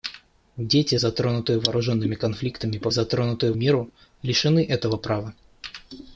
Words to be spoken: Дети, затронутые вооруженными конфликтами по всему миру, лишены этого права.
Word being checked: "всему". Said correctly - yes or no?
no